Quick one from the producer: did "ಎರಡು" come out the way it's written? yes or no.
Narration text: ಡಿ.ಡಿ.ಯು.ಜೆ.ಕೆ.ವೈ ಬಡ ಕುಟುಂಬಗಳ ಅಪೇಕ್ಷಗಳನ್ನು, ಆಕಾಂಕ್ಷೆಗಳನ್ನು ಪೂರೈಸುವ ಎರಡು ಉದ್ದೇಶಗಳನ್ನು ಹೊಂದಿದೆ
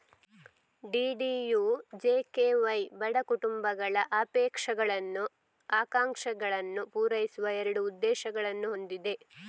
yes